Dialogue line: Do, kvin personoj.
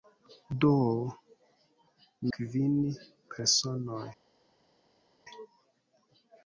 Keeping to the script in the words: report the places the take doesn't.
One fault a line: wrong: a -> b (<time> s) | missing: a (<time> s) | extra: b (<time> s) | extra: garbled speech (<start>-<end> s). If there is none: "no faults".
no faults